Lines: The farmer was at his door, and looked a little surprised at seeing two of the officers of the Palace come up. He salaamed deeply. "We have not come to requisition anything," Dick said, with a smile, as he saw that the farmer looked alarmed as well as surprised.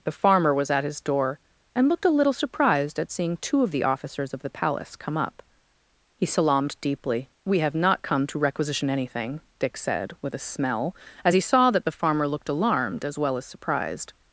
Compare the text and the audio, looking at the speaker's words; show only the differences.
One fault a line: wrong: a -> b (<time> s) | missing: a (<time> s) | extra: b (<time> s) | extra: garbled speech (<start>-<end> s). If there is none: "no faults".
wrong: smile -> smell (10.4 s)